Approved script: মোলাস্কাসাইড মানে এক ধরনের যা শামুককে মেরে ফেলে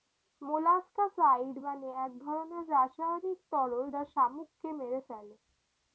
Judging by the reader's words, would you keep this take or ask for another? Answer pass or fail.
fail